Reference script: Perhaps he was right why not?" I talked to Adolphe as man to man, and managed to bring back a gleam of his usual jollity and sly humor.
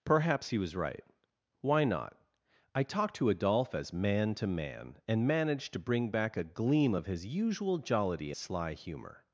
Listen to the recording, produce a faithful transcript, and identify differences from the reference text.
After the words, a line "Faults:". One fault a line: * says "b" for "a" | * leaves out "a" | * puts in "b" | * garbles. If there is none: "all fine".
Perhaps he was right why not?" I talked to Adolphe as man to man, and managed to bring back a gleam of his usual jollity sly humor.
Faults:
* leaves out "and"